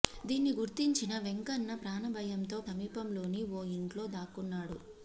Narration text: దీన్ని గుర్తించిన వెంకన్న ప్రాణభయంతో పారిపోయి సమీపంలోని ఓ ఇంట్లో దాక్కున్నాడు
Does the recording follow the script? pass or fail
fail